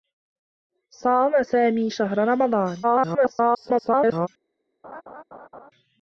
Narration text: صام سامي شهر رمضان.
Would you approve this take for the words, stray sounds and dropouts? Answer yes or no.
no